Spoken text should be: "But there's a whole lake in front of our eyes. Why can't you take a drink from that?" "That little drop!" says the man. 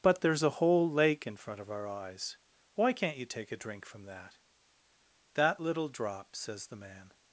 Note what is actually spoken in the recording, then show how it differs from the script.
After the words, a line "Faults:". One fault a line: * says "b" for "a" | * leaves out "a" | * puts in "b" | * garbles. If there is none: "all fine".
"But there's a whole lake in front of our eyes. Why can't you take a drink from that?" "That little drop!" says the man.
Faults:
all fine